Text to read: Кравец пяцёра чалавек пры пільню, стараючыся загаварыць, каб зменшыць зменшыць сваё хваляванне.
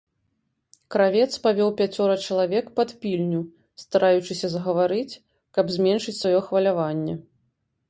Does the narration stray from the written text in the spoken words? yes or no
yes